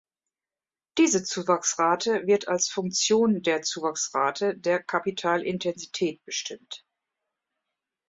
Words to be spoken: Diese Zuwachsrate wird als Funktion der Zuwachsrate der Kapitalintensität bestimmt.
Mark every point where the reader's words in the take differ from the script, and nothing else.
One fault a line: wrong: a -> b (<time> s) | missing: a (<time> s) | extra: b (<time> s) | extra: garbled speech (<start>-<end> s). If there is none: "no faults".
no faults